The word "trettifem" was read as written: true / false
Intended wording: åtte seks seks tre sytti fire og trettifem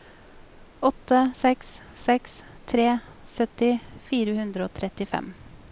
true